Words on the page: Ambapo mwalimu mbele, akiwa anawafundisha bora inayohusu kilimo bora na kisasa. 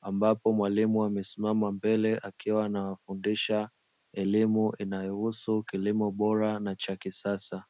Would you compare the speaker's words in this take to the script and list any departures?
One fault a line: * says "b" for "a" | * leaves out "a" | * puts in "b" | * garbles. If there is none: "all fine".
* puts in "amesimama"
* says "elimu" for "bora"
* puts in "cha"